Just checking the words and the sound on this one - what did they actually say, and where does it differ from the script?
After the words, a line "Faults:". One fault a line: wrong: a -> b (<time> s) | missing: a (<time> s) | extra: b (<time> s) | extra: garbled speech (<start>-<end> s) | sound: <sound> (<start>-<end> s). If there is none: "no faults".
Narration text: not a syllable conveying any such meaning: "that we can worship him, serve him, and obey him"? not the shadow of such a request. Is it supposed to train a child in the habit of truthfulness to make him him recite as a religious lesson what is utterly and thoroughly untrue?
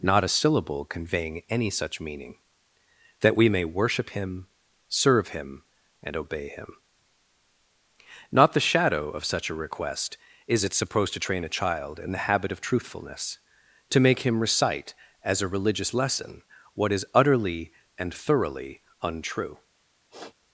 not a syllable conveying any such meaning: "that we may worship him, serve him, and obey him"? not the shadow of such a request. Is it supposed to train a child in the habit of truthfulness to make him recite as a religious lesson what is utterly and thoroughly untrue?
Faults:
wrong: can -> may (3.5 s)
missing: him (14.4 s)
sound: sniff (20.1-20.4 s)